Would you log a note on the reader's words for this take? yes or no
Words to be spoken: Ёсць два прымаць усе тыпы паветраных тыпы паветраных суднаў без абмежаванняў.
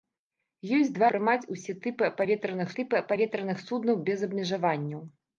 no